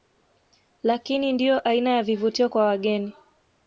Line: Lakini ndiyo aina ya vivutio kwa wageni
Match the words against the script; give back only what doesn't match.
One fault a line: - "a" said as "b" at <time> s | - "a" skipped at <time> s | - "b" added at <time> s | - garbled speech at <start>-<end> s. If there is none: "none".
none